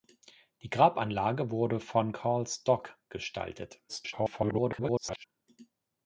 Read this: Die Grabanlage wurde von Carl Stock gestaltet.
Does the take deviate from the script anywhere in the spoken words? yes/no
yes